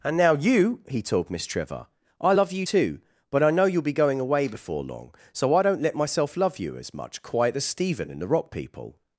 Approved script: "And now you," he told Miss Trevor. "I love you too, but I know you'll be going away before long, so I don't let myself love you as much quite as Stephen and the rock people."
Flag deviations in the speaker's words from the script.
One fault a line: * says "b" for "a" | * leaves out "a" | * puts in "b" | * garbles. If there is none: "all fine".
all fine